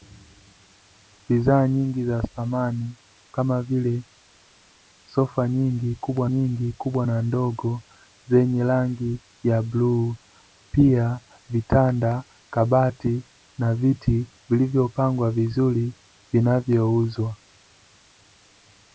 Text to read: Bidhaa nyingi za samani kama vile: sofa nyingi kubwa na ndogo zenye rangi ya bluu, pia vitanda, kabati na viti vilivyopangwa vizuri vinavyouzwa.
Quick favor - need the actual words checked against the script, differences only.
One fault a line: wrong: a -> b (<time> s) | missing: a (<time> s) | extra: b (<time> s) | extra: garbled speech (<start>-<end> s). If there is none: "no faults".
extra: nyingi kubwa (6.3 s)